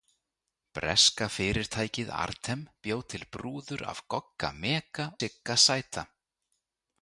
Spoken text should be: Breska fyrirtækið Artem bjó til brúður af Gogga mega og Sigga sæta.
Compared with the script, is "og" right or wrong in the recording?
wrong